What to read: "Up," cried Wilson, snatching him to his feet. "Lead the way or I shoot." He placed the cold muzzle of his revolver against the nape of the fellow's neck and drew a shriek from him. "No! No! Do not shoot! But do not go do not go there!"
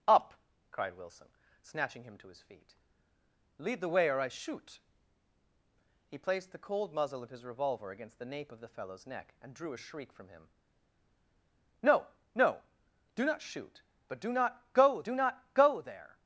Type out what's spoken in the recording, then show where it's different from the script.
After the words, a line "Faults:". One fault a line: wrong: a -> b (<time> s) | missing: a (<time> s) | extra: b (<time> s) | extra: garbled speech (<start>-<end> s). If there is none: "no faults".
"Up," cried Wilson, snatching him to his feet. "Lead the way or I shoot." He placed the cold muzzle of his revolver against the nape of the fellow's neck and drew a shriek from him. "No! No! Do not shoot! But do not go do not go there!"
Faults:
no faults